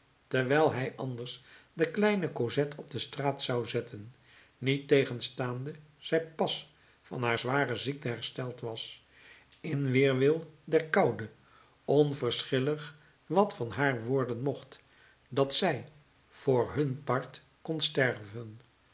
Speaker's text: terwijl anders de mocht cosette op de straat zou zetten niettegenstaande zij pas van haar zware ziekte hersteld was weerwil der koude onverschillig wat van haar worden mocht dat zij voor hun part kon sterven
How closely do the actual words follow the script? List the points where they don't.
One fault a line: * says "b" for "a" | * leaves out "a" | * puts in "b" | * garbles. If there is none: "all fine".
* puts in "hij"
* says "kleine" for "mocht"
* puts in "in"